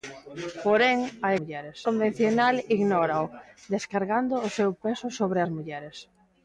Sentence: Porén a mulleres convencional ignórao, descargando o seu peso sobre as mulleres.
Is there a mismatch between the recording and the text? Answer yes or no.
no